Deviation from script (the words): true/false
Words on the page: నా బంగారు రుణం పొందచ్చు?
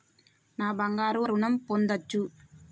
false